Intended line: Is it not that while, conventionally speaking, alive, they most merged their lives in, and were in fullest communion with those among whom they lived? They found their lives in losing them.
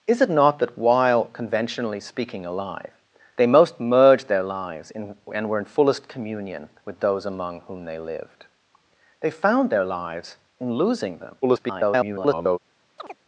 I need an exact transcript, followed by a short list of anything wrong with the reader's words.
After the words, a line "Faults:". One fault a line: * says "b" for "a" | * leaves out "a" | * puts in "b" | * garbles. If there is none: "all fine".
Is it not that while, conventionally speaking, alive, they most merged their lives in, and were in fullest communion with those among whom they lived? They found their lives in losing them. [garbled]
Faults:
* garbles